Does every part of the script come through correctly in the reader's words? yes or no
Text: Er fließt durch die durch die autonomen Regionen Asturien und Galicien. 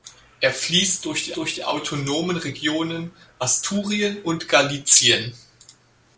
yes